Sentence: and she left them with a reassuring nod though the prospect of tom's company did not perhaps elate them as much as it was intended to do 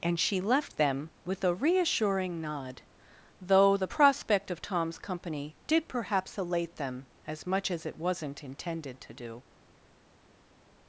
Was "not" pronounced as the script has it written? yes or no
no